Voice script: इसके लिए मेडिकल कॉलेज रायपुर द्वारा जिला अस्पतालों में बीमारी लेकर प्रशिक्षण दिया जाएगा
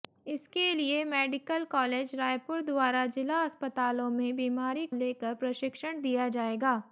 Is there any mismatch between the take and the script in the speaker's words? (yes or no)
no